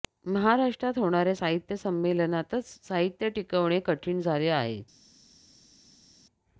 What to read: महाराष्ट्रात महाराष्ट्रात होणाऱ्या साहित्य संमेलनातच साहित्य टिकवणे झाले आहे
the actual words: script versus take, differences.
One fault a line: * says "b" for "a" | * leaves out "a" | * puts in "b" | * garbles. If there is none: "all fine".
* leaves out "महाराष्ट्रात"
* puts in "कठीण"